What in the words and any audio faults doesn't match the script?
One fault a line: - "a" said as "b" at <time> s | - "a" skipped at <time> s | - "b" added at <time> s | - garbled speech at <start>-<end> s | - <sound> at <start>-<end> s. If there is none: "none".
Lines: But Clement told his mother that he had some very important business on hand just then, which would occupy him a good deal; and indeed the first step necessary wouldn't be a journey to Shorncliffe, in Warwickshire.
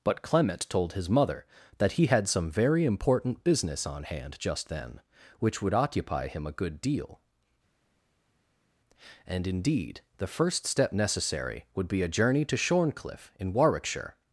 - "wouldn't" said as "would" at 11.7 s